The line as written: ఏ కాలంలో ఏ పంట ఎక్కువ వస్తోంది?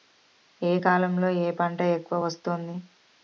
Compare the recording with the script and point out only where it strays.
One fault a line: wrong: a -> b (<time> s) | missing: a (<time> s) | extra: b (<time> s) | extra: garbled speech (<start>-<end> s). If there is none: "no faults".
no faults